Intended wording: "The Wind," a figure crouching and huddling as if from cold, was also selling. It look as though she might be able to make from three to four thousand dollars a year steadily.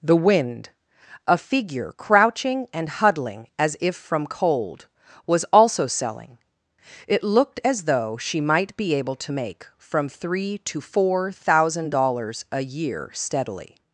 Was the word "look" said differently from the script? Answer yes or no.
yes